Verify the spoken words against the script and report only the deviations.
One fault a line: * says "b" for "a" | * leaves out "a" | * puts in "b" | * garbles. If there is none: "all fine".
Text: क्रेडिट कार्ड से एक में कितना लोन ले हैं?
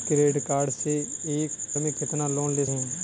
all fine